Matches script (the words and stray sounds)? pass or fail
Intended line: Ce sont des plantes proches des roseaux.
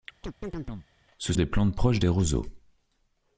fail